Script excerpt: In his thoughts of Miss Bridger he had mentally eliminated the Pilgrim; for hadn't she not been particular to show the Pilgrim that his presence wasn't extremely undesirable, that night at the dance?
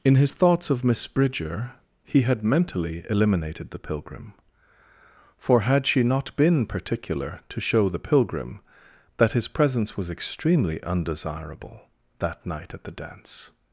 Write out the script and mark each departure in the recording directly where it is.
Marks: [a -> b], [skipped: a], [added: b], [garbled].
In his thoughts of Miss Bridger he had mentally eliminated the Pilgrim; for [hadn't -> had] she not been particular to show the Pilgrim that his presence [wasn't -> was] extremely undesirable, that night at the dance?